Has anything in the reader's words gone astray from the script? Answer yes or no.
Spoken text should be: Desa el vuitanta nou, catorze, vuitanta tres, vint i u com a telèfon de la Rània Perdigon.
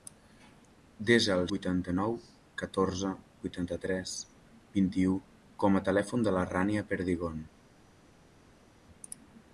no